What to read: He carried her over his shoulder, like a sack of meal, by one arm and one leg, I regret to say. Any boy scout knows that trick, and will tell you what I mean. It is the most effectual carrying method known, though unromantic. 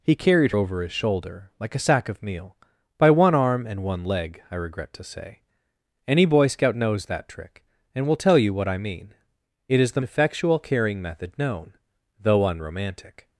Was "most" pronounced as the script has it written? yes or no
no